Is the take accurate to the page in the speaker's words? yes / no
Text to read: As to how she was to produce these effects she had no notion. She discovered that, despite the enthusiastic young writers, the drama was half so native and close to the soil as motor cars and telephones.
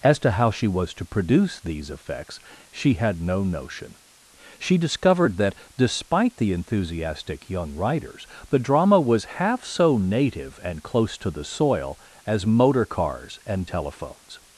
yes